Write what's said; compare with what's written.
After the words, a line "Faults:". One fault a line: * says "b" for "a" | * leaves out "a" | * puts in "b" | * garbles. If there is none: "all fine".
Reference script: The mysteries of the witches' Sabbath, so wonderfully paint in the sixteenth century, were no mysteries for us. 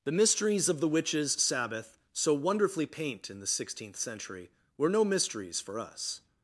The mysteries of the witches' Sabbath, so wonderfully paint in the sixteenth century, were no mysteries for us.
Faults:
all fine